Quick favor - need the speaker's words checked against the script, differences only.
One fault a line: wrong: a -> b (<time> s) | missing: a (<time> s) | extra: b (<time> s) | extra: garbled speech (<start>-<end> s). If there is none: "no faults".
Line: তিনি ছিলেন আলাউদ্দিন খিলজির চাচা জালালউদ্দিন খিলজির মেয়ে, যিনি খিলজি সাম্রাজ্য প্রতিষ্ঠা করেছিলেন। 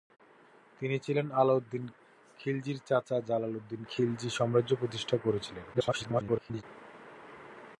missing: খিলজির মেয়ে যিনি (3.8 s)
extra: garbled speech (5.7-6.6 s)